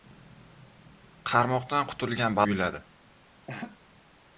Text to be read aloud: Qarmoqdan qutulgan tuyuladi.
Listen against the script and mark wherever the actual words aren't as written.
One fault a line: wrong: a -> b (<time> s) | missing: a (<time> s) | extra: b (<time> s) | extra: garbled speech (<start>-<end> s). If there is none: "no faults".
no faults